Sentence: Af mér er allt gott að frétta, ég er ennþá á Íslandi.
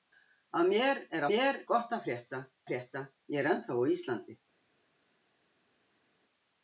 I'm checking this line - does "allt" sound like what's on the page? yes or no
no